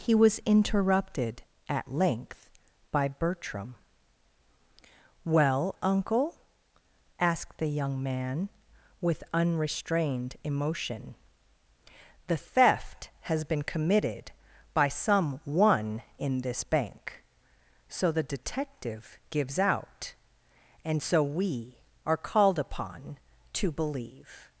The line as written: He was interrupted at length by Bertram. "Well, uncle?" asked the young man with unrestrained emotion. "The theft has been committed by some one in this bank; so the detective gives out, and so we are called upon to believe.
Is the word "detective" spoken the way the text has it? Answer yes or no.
yes